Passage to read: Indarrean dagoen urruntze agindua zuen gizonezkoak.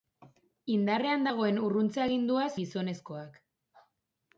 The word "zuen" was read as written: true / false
false